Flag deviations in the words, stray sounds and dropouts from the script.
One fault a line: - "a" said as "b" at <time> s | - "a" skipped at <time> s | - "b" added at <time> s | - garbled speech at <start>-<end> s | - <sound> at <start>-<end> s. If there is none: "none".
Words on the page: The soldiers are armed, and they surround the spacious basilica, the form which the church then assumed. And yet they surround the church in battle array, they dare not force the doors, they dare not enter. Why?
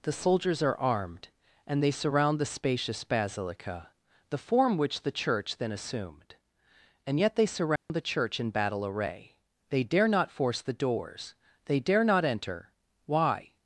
- dropout at 7.8-7.9 s